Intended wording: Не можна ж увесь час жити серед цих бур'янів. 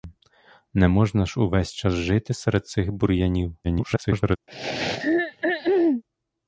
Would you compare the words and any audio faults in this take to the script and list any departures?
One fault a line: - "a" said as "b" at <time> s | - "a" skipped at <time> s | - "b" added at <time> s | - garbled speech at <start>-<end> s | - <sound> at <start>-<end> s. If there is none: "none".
- garbled speech at 3.6-4.4 s
- throat clearing at 4.5-6.0 s